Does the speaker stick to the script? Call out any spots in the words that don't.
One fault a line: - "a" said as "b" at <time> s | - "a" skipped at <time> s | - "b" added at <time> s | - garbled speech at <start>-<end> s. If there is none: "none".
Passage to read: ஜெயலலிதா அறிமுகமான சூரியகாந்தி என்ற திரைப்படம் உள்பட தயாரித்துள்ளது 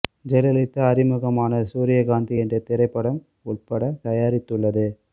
none